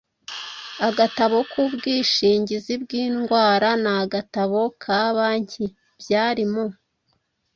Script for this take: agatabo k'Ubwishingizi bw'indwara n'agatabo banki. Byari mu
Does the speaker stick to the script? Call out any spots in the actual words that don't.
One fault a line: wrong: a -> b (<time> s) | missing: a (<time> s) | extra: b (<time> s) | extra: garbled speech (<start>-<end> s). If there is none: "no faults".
extra: ka (4.8 s)